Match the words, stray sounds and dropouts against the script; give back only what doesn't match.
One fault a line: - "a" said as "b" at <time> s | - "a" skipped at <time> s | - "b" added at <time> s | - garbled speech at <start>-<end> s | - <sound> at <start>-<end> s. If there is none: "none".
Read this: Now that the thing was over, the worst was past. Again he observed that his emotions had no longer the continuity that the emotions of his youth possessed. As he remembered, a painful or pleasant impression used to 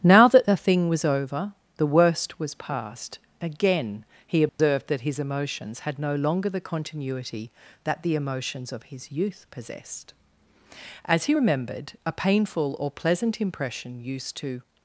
- dropout at 4.5-4.6 s